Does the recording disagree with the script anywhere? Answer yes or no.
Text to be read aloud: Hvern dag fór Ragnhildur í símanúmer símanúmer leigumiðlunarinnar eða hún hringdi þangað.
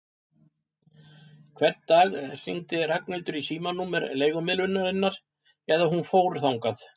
yes